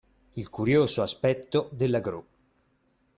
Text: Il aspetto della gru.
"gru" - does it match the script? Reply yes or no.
yes